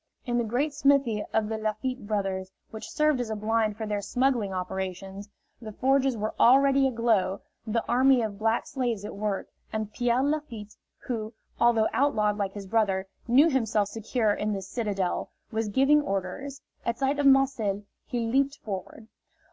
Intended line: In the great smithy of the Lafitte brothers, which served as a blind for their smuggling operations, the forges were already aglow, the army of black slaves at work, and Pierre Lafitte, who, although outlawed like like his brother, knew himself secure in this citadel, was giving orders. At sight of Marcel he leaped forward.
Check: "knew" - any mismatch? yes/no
no